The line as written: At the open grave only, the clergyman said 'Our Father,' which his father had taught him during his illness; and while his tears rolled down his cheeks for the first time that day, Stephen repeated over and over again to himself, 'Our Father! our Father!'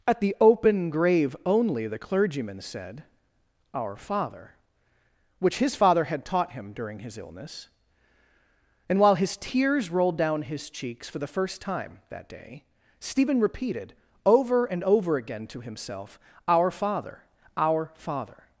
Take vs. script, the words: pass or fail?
pass